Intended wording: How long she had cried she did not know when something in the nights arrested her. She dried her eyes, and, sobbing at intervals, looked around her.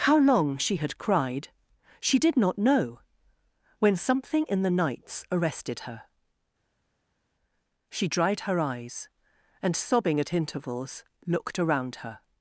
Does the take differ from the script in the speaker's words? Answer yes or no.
no